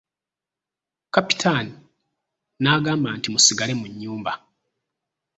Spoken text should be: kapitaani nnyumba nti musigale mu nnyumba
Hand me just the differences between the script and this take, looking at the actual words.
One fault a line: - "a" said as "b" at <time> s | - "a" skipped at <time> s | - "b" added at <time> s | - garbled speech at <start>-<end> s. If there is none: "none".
- "nnyumba" said as "n'agamba" at 2.6 s